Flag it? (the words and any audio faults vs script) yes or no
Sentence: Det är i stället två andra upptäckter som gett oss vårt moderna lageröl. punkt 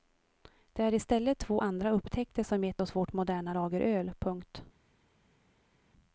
no